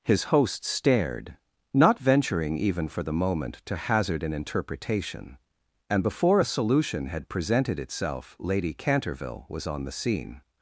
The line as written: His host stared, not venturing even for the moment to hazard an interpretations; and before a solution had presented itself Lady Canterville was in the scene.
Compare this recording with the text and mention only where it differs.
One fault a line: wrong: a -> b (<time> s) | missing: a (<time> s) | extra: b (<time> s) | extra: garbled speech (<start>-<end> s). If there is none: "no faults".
wrong: interpretations -> interpretation (4.3 s)
wrong: in -> on (9.7 s)